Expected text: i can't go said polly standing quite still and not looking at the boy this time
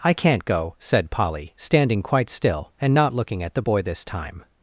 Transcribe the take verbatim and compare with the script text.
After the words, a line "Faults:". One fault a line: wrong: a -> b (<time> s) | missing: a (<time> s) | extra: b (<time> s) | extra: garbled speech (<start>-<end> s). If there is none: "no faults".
i can't go said polly standing quite still and not looking at the boy this time
Faults:
no faults